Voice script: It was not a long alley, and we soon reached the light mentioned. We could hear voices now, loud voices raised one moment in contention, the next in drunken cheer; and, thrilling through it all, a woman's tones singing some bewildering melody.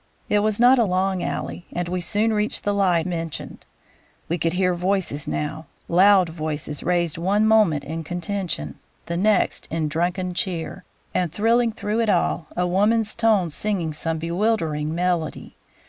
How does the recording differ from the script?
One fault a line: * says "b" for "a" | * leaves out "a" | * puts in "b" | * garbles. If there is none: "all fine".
all fine